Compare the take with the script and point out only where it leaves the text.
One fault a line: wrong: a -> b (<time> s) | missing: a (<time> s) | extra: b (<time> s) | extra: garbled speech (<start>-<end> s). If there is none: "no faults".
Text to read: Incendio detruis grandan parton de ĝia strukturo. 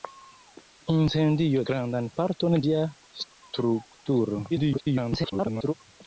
missing: detruis (1.6 s)
missing: de (2.6 s)
extra: garbled speech (4.5-5.7 s)